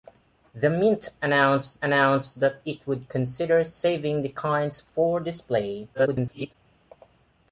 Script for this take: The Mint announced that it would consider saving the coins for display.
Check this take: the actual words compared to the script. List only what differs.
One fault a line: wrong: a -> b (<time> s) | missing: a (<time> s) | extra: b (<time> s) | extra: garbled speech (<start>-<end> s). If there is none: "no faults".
extra: announced (1.8 s)
extra: garbled speech (5.9-6.5 s)